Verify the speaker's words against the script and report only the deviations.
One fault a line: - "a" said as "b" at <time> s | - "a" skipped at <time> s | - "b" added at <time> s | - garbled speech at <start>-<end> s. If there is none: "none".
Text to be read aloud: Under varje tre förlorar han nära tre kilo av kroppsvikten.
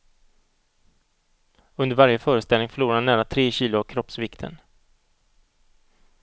- "tre" said as "föreställning" at 2.2 s